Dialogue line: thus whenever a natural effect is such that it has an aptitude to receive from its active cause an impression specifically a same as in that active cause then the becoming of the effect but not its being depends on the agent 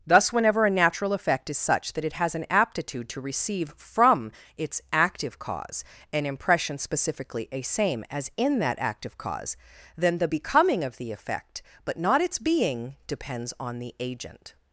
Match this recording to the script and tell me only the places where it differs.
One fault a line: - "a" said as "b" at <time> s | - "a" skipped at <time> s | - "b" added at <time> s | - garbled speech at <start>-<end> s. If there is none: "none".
none